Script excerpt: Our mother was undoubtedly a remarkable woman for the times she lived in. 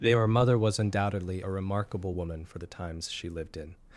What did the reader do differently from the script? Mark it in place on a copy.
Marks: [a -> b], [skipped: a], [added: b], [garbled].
[Our -> Their] mother was undoubtedly a remarkable woman for the times she lived in.